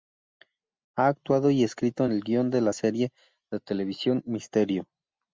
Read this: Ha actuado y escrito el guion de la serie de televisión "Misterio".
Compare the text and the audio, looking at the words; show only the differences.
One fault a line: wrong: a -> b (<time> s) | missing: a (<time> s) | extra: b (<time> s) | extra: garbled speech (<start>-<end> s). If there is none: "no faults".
no faults